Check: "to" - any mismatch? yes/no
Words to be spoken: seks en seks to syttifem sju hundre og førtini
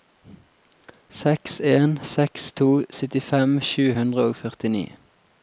no